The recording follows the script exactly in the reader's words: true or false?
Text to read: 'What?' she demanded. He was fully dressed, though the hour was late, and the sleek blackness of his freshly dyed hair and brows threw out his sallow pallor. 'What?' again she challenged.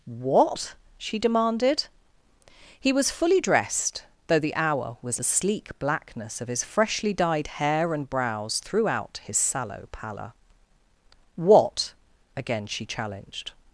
false